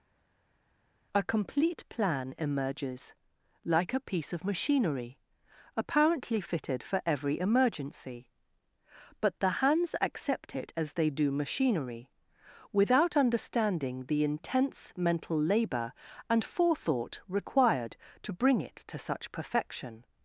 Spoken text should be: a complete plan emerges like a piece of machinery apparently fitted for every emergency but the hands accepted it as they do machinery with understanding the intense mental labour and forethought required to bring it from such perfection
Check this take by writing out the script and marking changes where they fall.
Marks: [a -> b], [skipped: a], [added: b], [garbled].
a complete plan emerges like a piece of machinery apparently fitted for every emergency but the hands [accepted -> accept] it as they do machinery [with -> without] understanding the intense mental labour and forethought required to bring it [from -> to] such perfection